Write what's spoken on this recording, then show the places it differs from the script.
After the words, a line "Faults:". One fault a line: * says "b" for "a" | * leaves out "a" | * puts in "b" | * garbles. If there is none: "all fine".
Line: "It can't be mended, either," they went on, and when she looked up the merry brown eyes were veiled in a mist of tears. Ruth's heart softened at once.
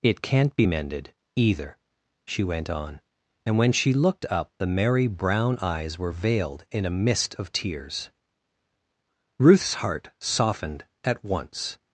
"It can't be mended, either," she went on, and when she looked up the merry brown eyes were veiled in a mist of tears. Ruth's heart softened at once.
Faults:
* says "she" for "they"